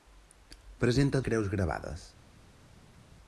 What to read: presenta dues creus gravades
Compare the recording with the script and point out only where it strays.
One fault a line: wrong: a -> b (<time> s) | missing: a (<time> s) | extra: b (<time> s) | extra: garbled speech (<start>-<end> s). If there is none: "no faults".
missing: dues (1.2 s)